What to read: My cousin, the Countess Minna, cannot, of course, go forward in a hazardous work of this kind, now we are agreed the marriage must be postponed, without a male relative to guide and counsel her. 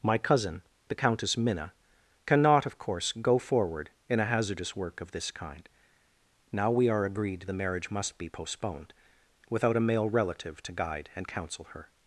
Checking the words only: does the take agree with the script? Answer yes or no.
yes